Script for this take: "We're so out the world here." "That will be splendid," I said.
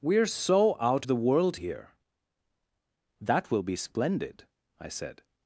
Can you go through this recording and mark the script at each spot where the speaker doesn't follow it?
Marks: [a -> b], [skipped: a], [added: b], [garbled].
"We're so out the world here." "That will be splendid," I said.